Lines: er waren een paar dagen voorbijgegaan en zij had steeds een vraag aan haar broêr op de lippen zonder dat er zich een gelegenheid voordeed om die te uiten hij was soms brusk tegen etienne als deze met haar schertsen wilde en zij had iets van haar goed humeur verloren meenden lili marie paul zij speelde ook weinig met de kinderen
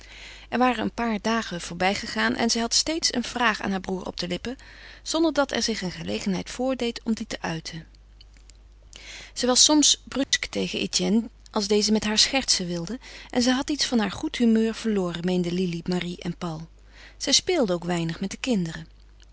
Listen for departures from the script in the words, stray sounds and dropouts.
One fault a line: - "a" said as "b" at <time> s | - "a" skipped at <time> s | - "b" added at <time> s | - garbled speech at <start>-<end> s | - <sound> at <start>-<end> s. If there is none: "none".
- "hij" said as "zij" at 9.3 s
- dropout at 10.2-10.3 s
- "en" added at 16.2 s